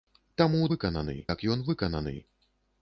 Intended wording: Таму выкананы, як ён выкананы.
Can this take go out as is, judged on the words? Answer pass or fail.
pass